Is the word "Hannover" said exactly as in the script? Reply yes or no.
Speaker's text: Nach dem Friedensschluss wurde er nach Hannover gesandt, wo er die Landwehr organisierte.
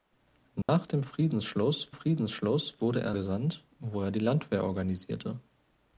no